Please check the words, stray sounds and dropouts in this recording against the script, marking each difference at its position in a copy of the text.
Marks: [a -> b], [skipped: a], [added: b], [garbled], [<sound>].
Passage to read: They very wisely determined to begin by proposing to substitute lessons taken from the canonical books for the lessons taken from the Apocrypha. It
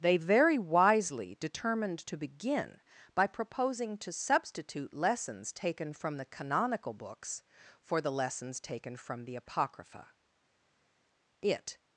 They very wisely determined to begin by proposing to substitute lessons taken from the canonical books for the lessons taken from the Apocrypha. It